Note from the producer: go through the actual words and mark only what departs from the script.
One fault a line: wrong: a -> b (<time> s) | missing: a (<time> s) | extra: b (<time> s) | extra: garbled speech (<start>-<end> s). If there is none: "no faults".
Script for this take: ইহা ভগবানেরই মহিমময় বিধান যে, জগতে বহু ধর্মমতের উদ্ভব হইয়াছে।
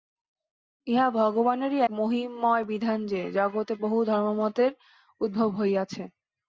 no faults